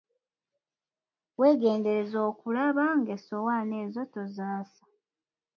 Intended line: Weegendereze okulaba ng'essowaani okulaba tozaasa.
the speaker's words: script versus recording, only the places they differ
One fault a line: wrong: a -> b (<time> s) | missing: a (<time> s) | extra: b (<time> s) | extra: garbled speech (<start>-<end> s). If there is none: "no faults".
wrong: okulaba -> ezo (3.9 s)